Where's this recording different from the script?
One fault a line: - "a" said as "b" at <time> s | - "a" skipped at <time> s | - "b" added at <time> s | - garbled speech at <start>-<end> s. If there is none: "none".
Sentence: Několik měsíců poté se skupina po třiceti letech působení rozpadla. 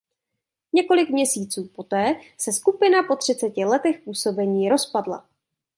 none